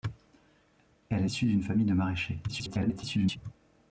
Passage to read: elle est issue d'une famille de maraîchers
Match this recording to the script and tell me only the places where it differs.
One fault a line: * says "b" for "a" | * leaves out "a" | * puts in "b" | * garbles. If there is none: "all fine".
* leaves out "est"
* garbles